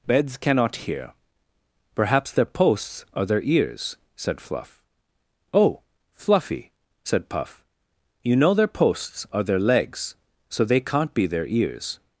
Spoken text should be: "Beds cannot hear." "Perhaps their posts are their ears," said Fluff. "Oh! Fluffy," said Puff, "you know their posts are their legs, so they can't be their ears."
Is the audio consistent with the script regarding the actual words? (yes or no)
yes